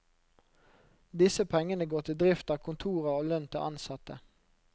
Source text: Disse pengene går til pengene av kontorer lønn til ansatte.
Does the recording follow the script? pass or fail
fail